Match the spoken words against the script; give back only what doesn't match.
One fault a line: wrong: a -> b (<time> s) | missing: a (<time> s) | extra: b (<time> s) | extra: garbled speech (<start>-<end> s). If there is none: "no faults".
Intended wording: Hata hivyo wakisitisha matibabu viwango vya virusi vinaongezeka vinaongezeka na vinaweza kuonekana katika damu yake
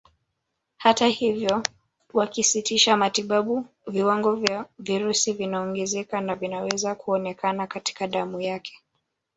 missing: vinaongezeka (6.2 s)